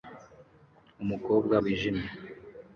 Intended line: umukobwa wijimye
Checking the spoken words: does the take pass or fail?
pass